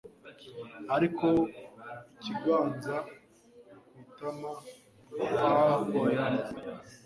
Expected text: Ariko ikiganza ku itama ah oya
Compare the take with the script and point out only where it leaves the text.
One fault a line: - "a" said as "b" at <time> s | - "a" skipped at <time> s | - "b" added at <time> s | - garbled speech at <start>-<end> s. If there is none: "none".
none